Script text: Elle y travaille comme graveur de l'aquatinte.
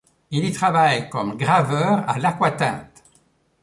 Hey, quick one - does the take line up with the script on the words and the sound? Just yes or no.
no